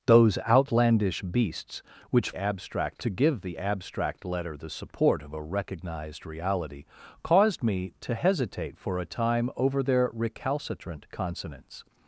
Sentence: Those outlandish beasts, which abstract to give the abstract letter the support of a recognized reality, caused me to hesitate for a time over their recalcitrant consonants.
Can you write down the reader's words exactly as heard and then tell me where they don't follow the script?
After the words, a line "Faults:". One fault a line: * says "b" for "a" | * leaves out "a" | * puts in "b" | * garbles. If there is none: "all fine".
Those outlandish beasts, which abstract to give the abstract letter the support of a recognized reality, caused me to hesitate for a time over their recalcitrant consonants.
Faults:
all fine